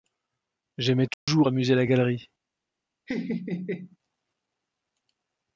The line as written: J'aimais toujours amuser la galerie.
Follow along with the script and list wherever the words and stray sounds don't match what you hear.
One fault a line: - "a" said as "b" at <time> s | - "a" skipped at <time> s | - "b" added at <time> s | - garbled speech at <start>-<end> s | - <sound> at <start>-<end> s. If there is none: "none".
- dropout at 1.1-1.3 s
- laugh at 3.1-4.0 s